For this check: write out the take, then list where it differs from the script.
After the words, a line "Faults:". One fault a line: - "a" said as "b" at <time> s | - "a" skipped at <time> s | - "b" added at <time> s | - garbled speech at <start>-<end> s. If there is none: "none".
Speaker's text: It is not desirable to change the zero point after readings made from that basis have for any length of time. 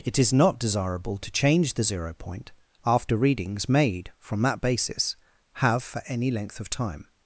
It is not desirable to change the zero point after readings made from that basis have for any length of time.
Faults:
none